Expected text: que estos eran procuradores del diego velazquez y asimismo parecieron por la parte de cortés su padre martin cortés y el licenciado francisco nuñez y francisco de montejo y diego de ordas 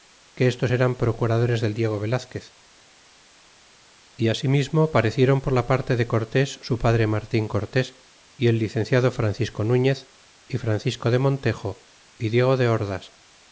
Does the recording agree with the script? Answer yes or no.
yes